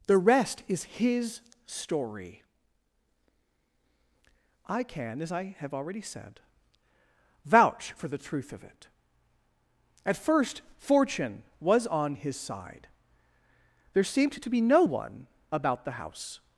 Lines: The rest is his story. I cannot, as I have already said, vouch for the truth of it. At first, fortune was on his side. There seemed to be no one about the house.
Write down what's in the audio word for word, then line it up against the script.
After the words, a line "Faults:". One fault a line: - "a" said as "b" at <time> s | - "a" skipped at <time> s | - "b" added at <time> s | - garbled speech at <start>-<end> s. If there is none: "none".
The rest is his story. I can, as I have already said, vouch for the truth of it. At first, fortune was on his side. There seemed to be no one about the house.
Faults:
- "cannot" said as "can" at 4.8 s